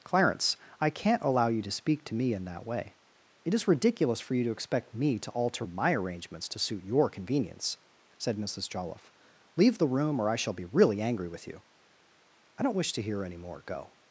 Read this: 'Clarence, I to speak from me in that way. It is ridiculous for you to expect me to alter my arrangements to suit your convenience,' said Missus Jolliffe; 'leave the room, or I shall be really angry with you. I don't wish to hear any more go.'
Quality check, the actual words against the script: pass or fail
fail